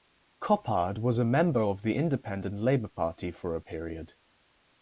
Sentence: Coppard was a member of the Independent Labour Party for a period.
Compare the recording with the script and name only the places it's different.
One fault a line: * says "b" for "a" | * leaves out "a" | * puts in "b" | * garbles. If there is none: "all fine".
all fine